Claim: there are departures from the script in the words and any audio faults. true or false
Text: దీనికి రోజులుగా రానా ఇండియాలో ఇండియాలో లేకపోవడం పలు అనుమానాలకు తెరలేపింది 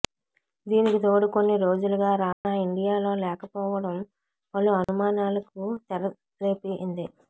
true